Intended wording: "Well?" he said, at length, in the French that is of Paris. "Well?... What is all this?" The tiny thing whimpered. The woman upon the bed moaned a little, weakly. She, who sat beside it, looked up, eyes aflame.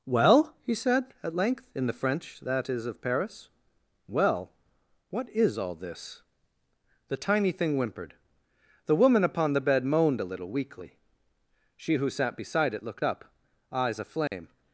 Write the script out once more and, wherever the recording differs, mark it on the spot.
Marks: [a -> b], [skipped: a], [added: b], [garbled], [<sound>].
"Well?" he said, at length, in the French that is of Paris. "Well?... What is all this?" The tiny thing whimpered. The woman upon the bed moaned a little, weakly. She, who sat beside it, looked up, eyes aflame. [dropout]